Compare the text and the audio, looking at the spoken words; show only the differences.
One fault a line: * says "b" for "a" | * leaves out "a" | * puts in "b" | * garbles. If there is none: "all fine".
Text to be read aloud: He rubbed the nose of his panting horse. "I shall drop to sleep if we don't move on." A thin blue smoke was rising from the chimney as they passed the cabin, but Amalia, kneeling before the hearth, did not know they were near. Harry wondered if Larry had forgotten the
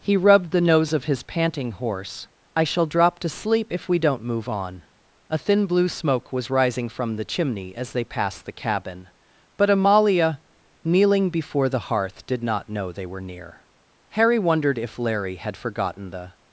all fine